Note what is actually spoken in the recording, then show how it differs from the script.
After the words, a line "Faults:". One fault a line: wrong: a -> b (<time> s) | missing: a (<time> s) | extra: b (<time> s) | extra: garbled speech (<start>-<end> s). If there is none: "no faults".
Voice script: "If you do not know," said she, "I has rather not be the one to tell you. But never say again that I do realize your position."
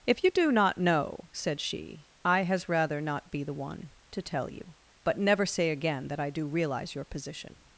"If you do not know," said she, "I has rather not be the one to tell you. But never say again that I do realize your position."
Faults:
no faults